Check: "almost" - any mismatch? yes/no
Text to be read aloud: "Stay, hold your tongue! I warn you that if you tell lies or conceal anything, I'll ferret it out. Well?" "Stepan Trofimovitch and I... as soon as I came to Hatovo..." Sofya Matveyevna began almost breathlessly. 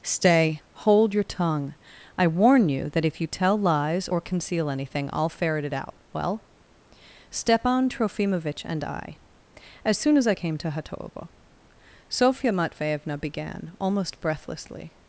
no